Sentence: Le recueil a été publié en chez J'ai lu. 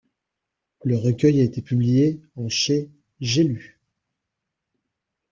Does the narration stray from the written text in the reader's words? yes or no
no